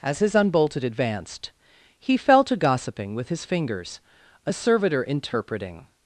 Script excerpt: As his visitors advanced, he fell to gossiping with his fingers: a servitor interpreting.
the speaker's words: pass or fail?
fail